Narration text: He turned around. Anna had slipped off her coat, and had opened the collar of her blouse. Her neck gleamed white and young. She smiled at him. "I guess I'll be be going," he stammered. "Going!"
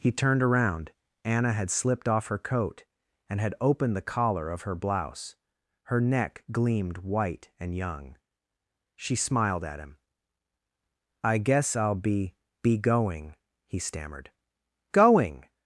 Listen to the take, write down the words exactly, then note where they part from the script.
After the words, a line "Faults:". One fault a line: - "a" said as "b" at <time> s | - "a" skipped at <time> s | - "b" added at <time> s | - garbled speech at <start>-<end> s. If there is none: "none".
He turned around. Anna had slipped off her coat, and had opened the collar of her blouse. Her neck gleamed white and young. She smiled at him. "I guess I'll be be going," he stammered. "Going!"
Faults:
none